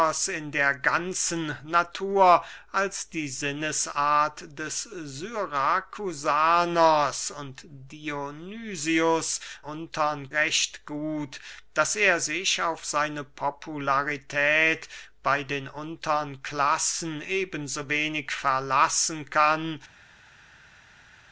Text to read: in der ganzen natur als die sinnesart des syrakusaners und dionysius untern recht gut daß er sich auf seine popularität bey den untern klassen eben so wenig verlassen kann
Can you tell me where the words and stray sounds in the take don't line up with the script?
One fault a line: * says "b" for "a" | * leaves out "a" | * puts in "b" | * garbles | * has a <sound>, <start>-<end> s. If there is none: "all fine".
all fine